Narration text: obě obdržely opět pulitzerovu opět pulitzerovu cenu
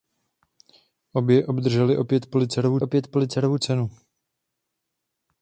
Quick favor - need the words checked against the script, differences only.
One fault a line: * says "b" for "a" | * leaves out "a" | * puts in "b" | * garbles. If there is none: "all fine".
all fine